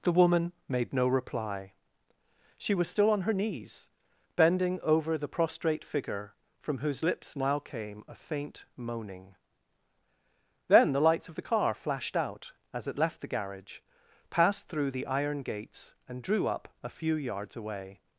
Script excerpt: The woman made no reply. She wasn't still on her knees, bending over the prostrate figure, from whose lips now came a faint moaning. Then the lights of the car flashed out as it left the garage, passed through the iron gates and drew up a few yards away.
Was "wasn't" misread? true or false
true